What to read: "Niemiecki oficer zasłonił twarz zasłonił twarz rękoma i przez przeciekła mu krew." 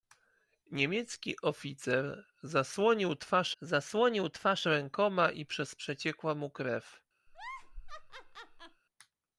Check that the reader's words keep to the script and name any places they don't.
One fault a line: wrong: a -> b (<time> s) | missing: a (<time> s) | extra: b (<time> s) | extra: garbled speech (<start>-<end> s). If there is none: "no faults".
no faults